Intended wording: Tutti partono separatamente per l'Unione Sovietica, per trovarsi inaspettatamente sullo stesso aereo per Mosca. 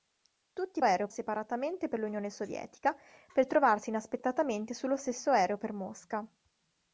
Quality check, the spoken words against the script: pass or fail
fail